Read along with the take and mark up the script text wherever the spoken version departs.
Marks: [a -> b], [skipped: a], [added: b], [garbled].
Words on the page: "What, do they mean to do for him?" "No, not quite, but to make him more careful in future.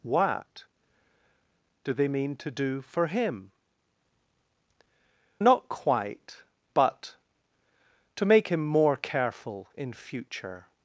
"What, do they mean to do for him?" [skipped: "No,] not quite, but to make him more careful in future.